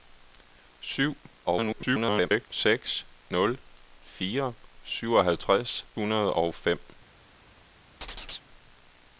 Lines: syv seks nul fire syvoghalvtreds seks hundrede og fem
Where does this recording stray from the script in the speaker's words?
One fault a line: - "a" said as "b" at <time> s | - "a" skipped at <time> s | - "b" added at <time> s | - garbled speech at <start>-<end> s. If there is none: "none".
- garbled speech at 1.5-2.5 s
- "seks" skipped at 5.8 s